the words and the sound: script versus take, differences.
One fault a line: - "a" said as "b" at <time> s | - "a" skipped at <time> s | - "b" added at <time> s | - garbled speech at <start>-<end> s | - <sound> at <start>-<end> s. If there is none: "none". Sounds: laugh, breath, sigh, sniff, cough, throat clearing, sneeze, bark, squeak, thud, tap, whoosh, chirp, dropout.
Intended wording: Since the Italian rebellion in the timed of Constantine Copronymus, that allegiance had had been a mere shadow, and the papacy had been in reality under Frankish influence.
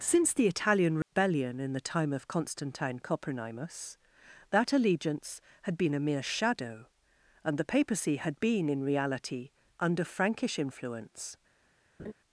- dropout at 1.0-1.1 s
- "timed" said as "time" at 1.9 s
- "had" skipped at 5.8 s
- laugh at 12.0-12.1 s